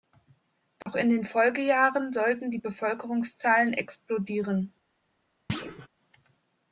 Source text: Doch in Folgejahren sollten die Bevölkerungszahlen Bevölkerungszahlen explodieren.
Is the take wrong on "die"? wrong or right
right